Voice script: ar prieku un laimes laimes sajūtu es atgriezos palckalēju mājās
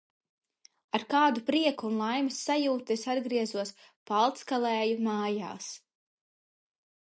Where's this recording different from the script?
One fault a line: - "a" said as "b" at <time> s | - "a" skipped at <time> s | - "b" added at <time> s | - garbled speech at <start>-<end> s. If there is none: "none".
- "kādu" added at 1.1 s
- "laimes" skipped at 2.4 s